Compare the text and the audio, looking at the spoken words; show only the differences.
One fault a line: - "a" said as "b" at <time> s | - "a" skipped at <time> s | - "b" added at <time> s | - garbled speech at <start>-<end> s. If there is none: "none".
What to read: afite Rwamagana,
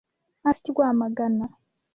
none